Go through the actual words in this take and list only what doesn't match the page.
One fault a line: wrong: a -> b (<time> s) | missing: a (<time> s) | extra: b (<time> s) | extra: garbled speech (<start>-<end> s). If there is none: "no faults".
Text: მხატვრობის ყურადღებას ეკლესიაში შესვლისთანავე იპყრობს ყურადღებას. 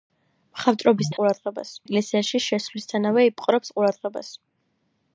no faults